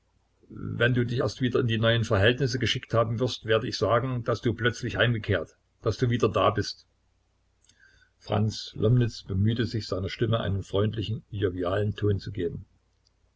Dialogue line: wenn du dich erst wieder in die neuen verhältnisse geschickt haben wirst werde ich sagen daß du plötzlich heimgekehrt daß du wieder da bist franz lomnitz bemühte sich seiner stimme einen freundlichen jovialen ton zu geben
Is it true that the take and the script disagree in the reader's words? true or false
false